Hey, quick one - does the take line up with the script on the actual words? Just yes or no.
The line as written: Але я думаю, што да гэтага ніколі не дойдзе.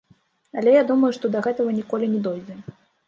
yes